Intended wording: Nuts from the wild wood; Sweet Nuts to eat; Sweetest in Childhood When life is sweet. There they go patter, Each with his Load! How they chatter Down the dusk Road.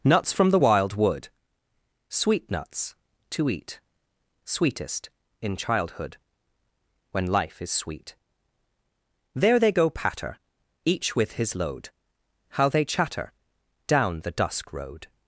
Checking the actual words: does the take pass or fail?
pass